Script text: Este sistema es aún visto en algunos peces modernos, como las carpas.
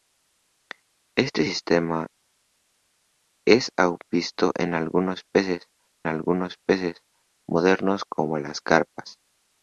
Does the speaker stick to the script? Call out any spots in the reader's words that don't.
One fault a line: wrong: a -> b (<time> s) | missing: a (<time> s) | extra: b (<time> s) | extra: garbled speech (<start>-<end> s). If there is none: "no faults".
extra: algunos peces (6.1 s)